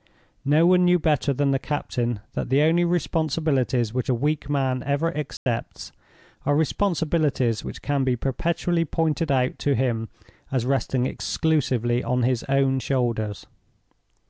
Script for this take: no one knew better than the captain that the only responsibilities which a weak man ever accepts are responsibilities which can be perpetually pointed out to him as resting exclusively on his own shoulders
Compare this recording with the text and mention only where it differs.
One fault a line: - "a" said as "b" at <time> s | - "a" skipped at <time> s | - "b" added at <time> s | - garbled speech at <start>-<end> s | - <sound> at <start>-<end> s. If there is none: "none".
- dropout at 5.4-5.5 s